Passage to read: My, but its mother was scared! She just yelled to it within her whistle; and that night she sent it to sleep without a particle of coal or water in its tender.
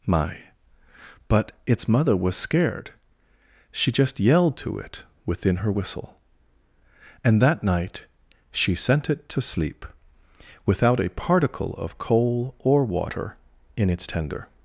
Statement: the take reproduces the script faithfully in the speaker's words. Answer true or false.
true